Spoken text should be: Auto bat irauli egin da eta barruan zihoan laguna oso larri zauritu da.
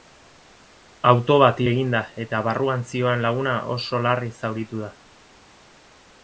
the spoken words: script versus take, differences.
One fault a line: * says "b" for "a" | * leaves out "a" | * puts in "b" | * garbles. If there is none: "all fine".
* leaves out "irauli"